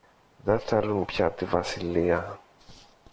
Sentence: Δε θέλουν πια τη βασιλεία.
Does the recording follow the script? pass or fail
pass